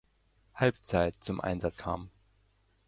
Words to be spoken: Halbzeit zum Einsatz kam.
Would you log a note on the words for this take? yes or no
no